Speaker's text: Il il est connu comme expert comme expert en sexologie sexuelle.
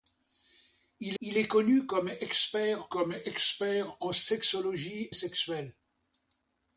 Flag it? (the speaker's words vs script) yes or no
no